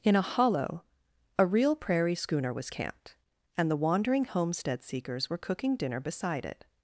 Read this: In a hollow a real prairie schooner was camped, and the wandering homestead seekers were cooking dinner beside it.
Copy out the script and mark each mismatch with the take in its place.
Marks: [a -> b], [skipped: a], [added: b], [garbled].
In a hollow a real prairie schooner was camped, and the wandering homestead seekers were cooking dinner beside it.